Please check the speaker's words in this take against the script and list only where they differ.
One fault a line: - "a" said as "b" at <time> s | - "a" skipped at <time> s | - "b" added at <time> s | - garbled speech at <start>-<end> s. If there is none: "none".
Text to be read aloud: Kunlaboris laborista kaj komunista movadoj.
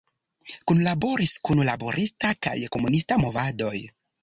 - "kun" added at 1.5 s